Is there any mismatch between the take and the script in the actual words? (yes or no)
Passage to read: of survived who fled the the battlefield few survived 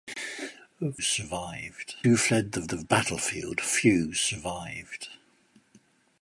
no